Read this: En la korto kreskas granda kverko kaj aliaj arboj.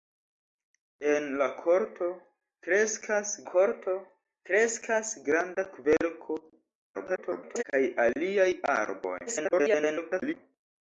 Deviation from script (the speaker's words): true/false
true